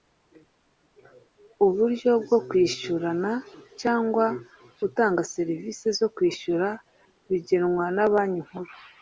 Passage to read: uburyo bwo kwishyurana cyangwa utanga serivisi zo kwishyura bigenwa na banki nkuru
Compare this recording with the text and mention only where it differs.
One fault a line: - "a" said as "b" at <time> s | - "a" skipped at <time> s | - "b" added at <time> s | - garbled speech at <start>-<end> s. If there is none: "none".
none